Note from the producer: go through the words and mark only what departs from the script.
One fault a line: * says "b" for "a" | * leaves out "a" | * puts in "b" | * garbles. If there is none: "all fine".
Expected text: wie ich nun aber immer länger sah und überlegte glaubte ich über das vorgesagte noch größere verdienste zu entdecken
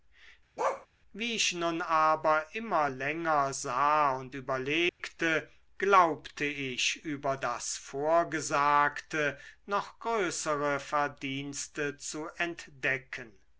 all fine